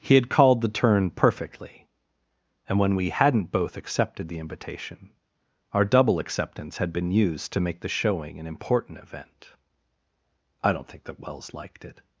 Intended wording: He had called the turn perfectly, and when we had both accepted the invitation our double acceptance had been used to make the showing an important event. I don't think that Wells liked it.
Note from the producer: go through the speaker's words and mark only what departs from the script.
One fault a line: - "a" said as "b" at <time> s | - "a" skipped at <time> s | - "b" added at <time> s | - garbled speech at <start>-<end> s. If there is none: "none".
- "had" said as "hadn't" at 3.1 s